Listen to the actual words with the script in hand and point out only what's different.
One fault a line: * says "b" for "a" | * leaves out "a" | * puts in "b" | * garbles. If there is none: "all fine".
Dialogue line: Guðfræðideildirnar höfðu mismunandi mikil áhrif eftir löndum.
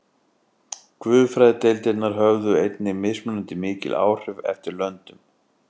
* puts in "einnig"